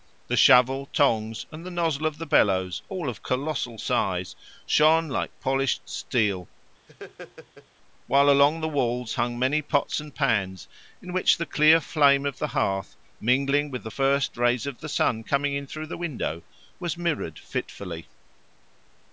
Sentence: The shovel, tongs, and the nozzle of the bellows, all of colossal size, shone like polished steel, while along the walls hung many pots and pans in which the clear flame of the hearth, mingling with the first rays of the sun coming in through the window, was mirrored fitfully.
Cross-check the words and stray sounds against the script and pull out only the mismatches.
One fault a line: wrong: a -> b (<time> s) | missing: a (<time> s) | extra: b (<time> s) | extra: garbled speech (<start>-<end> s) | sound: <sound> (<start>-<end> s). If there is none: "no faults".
sound: laugh (6.9-7.7 s)